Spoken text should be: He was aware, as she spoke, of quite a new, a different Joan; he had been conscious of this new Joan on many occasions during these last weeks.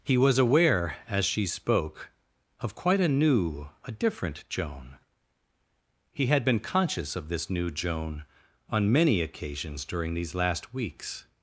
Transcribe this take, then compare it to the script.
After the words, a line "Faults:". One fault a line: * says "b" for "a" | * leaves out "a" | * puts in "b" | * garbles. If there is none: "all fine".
He was aware, as she spoke, of quite a new, a different Joan; he had been conscious of this new Joan on many occasions during these last weeks.
Faults:
all fine